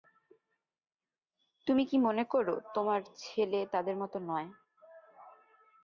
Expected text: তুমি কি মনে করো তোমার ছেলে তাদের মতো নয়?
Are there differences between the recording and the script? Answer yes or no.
no